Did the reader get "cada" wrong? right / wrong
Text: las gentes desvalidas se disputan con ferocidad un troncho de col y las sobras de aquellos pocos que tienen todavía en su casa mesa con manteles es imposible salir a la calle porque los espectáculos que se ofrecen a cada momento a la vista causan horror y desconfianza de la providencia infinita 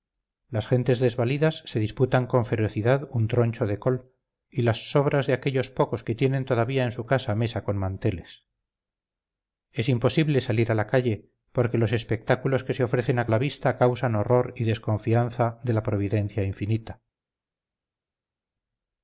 wrong